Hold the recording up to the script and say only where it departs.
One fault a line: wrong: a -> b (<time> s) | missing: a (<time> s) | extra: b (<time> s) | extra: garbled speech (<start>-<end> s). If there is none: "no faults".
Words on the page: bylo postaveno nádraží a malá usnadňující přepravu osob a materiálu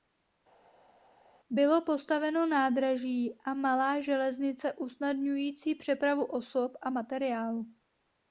extra: železnice (4.0 s)